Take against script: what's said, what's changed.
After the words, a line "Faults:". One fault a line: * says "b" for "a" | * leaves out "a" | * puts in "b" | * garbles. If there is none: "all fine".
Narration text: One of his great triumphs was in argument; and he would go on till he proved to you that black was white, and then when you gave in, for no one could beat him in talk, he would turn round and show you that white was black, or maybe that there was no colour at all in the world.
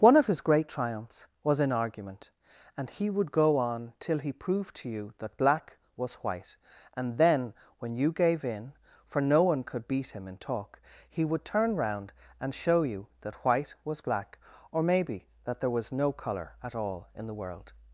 One of his great triumphs was in argument; and he would go on till he proved to you that black was white, and then when you gave in, for no one could beat him in talk, he would turn round and show you that white was black, or maybe that there was no colour at all in the world.
Faults:
all fine